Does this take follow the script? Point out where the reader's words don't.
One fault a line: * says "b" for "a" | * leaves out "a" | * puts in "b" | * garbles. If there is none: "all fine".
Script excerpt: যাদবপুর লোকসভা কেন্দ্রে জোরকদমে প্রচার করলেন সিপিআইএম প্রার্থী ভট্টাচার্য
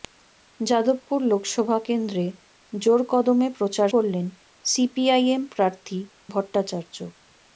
all fine